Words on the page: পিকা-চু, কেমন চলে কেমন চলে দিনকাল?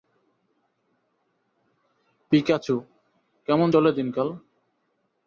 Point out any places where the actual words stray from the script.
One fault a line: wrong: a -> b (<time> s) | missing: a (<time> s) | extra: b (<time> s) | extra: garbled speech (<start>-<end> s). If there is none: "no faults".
missing: কেমন চলে (3.9 s)